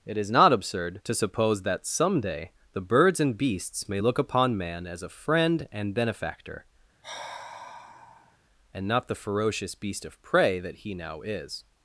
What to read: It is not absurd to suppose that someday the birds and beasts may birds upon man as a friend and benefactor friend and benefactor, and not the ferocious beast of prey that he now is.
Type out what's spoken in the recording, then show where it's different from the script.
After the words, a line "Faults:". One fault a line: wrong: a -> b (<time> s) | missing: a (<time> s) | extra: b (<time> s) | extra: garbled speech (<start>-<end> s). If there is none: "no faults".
It is not absurd to suppose that someday the birds and beasts may look upon man as a friend and benefactor, and not the ferocious beast of prey that he now is.
Faults:
wrong: birds -> look (4.0 s)
missing: friend and benefactor (6.6 s)